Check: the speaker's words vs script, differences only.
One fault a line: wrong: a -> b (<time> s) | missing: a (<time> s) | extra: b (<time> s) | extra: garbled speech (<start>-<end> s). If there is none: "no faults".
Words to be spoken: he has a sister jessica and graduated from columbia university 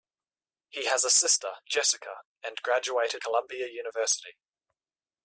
missing: from (3.2 s)